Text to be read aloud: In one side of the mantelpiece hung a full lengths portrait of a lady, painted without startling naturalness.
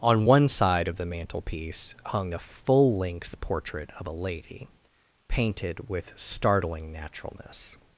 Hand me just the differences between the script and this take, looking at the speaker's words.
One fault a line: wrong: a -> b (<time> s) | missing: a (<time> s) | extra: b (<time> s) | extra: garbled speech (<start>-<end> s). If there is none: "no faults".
wrong: In -> On (0.0 s)
wrong: lengths -> length (3.0 s)
wrong: without -> with (5.9 s)